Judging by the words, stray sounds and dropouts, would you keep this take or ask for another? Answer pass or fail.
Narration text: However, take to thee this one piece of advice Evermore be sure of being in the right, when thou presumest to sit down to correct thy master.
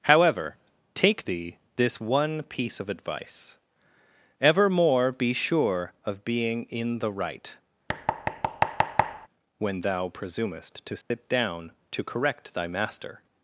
fail